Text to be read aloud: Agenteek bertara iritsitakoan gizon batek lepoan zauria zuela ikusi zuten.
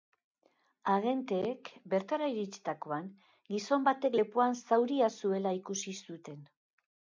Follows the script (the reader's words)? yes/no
yes